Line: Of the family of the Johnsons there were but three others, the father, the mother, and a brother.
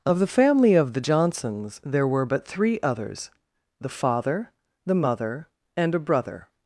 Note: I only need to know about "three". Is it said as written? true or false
true